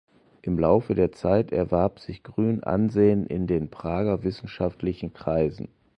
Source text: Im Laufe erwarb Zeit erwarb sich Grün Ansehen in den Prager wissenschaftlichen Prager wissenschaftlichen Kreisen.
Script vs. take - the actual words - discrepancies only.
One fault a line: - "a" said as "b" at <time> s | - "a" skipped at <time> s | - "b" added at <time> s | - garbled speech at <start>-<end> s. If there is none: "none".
- "erwarb" said as "der" at 0.9 s
- "Prager wissenschaftlichen" skipped at 5.1 s